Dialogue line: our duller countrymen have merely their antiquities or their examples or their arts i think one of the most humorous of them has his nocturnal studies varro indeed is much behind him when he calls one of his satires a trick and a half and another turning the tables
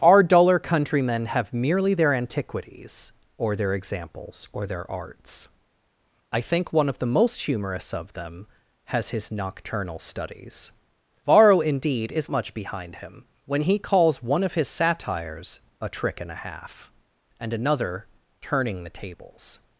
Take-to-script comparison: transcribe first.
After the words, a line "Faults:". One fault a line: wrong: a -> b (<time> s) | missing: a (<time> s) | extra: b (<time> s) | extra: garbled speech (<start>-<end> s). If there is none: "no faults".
our duller countrymen have merely their antiquities or their examples or their arts i think one of the most humorous of them has his nocturnal studies varro indeed is much behind him when he calls one of his satires a trick and a half and another turning the tables
Faults:
no faults